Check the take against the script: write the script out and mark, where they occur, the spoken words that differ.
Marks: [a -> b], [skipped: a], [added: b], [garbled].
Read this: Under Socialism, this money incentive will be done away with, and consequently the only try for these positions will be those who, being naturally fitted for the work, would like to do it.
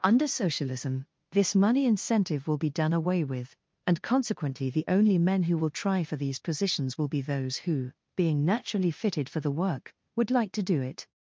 Under Socialism, this money incentive will be done away with, and consequently the only [added: men who will] try for these positions will be those who, being naturally fitted for the work, would like to do it.